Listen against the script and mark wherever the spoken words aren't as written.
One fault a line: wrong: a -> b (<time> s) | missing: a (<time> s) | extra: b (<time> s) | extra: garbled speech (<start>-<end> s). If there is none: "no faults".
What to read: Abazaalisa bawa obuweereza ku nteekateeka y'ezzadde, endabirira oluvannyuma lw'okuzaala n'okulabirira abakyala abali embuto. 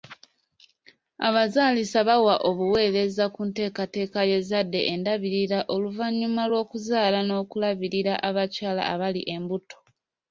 no faults